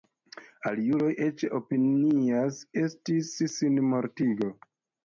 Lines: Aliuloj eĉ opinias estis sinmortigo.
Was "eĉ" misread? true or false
false